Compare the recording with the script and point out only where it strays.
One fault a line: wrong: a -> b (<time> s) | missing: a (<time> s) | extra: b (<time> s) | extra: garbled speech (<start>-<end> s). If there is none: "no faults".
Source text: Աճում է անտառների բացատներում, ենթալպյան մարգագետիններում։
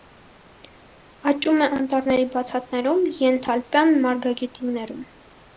no faults